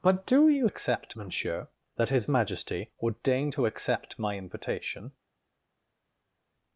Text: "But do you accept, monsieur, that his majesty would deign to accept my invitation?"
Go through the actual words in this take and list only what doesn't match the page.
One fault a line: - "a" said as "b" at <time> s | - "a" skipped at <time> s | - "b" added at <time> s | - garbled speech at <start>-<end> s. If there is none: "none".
none